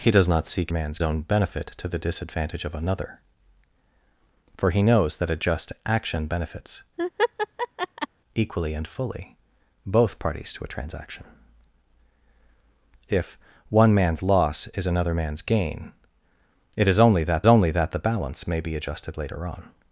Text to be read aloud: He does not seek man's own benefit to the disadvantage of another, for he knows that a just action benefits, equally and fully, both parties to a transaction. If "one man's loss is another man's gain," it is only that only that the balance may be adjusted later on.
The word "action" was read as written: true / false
true